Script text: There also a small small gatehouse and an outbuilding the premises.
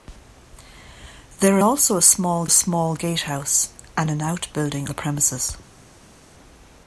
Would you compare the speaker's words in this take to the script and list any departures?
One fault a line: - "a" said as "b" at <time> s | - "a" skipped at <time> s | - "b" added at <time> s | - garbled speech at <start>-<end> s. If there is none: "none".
none